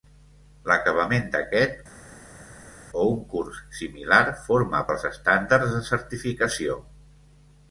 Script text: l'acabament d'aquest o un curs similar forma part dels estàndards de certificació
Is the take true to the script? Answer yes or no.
no